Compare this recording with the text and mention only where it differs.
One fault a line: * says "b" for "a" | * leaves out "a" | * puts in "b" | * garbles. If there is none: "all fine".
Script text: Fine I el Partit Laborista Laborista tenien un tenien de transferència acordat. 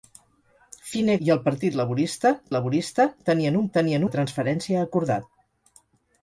all fine